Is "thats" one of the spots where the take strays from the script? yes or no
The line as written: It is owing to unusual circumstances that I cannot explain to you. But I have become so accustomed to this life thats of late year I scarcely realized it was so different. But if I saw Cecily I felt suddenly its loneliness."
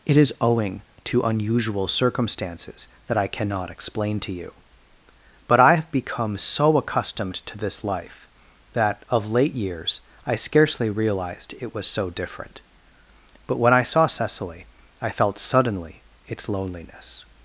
yes